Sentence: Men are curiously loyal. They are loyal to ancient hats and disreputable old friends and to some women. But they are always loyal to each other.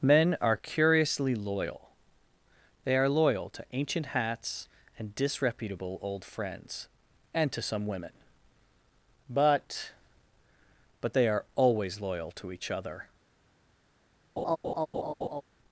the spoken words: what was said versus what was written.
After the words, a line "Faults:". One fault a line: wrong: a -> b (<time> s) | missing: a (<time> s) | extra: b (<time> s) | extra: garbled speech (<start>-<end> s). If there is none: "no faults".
Men are curiously loyal. They are loyal to ancient hats and disreputable old friends and to some women. But But they are always loyal to each other.
Faults:
extra: But (11.0 s)